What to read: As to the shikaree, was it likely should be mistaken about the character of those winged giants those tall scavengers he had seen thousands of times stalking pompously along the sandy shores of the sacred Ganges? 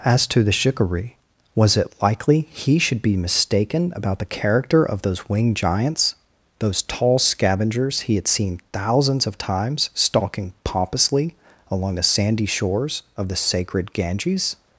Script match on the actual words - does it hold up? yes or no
no